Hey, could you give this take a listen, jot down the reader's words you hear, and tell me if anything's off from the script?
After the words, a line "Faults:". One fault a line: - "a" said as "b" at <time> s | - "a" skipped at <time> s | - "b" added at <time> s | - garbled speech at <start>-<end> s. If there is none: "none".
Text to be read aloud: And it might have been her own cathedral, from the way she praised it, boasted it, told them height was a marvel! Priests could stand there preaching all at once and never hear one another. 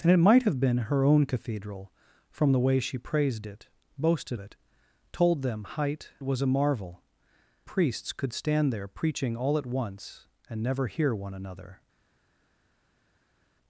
And it might have been her own cathedral, from the way she praised it, boasted it, told them height was a marvel! Priests could stand there preaching all at once and never hear one another.
Faults:
none